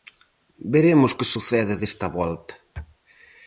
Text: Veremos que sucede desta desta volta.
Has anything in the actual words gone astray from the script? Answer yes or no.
yes